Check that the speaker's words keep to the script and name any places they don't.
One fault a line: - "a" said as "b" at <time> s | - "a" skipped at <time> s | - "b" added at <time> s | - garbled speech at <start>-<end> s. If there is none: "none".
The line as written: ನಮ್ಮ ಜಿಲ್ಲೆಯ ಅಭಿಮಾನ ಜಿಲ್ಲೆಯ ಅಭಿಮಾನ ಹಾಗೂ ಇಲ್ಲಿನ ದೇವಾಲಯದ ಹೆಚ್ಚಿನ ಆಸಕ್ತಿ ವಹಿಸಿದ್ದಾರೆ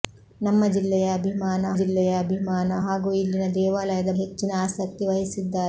none